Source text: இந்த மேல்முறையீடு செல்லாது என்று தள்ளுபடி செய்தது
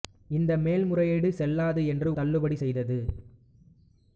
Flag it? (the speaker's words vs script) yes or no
no